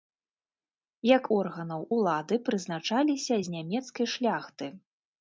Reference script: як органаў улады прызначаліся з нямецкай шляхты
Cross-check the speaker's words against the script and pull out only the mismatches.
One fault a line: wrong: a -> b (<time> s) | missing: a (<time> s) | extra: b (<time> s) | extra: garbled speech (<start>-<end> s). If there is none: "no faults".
no faults